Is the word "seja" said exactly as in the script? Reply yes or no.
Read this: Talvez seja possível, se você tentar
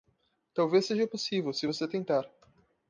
yes